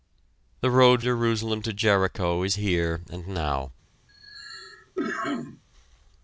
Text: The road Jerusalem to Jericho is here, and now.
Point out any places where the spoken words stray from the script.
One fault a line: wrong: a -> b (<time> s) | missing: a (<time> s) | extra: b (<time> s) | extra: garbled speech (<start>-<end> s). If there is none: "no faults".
no faults